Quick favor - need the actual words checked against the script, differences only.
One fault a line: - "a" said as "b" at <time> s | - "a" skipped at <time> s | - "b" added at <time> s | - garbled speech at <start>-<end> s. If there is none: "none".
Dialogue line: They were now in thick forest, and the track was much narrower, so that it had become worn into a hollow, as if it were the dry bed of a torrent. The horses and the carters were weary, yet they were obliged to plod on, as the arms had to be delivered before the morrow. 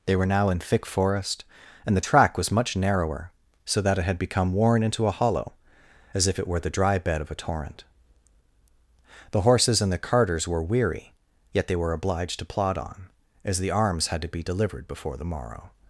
none